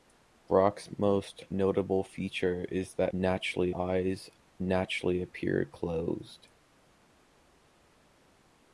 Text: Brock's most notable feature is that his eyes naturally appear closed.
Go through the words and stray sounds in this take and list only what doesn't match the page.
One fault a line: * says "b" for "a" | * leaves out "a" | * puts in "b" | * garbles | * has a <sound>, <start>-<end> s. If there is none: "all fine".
* says "naturally" for "his"